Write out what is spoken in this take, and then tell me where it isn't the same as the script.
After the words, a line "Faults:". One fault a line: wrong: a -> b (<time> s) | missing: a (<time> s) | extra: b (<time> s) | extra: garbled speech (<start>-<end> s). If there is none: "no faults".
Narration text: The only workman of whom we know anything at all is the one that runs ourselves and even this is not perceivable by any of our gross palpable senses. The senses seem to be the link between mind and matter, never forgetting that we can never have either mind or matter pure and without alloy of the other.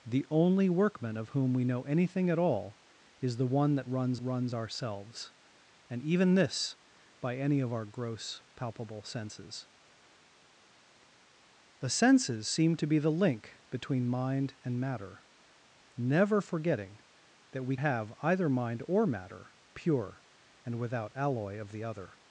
The only workman of whom we know anything at all is the one that runs runs ourselves and even this by any of our gross palpable senses. The senses seem to be the link between mind and matter, never forgetting that we have either mind or matter pure and without alloy of the other.
Faults:
extra: runs (4.2 s)
missing: is not perceivable (6.8 s)
missing: can never (17.8 s)